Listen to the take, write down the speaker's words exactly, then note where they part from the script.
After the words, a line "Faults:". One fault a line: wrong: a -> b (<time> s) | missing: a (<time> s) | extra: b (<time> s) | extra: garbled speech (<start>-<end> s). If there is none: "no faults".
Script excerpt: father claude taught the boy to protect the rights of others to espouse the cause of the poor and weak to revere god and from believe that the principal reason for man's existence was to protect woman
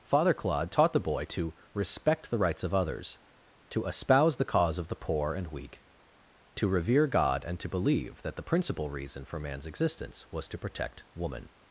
father claude taught the boy to respect the rights of others to espouse the cause of the poor and weak to revere god and to believe that the principal reason for man's existence was to protect woman
Faults:
wrong: protect -> respect (1.7 s)
wrong: from -> to (7.6 s)